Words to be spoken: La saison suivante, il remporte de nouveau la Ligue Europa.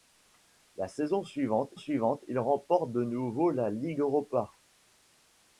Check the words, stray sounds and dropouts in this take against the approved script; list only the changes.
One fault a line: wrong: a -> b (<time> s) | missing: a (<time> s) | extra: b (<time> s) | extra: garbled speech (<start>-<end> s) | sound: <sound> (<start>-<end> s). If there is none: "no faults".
extra: suivante (1.7 s)